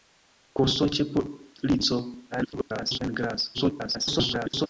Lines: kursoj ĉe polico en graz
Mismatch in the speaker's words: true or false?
true